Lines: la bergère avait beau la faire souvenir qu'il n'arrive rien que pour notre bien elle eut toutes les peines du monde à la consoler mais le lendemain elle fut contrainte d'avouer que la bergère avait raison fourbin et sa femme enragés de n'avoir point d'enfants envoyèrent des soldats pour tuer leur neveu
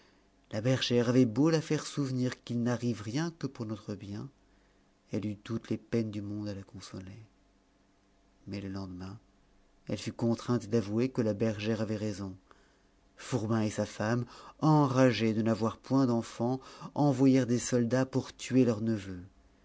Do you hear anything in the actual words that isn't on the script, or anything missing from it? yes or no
no